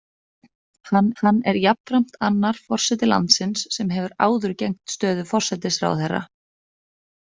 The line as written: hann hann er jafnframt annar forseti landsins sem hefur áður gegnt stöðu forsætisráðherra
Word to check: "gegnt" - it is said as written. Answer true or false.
true